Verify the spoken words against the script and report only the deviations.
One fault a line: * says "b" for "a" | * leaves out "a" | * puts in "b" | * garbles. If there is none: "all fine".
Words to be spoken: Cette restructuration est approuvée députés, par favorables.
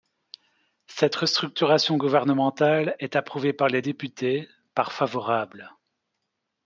* puts in "gouvernementale"
* puts in "par les"